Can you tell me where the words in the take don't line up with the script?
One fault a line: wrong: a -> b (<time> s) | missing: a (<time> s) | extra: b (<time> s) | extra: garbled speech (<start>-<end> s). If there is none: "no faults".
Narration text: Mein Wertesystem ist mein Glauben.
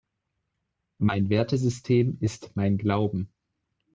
no faults